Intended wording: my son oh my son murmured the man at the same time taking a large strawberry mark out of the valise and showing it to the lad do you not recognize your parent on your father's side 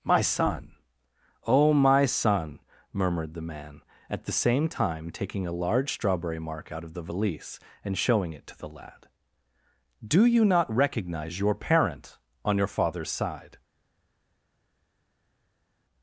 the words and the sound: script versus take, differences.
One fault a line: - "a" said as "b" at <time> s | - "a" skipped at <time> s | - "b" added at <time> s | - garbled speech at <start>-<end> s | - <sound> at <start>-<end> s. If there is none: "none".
none